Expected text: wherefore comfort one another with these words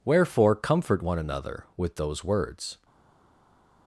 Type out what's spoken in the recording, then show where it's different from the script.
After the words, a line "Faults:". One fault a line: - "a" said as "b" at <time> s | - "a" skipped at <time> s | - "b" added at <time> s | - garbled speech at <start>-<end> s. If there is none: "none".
wherefore comfort one another with those words
Faults:
- "these" said as "those" at 2.0 s